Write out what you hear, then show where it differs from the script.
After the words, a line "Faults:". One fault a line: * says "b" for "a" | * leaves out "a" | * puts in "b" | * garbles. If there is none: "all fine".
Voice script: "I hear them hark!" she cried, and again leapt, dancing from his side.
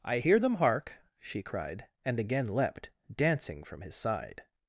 "I hear them hark!" she cried, and again leapt, dancing from his side.
Faults:
all fine